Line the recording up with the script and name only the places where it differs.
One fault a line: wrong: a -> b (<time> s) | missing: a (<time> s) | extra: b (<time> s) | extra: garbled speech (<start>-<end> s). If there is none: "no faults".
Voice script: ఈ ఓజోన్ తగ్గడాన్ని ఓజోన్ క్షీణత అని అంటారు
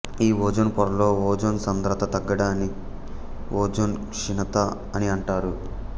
extra: పొరలో ఓజోన్ సాంద్రత (0.7 s)